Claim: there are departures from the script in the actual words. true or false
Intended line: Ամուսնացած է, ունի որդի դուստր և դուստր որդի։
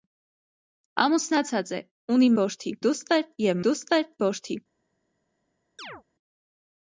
false